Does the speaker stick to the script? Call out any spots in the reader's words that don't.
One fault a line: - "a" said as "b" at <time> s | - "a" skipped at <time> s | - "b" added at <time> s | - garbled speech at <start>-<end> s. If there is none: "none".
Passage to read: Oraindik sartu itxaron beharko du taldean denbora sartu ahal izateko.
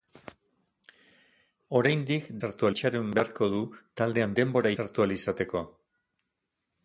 none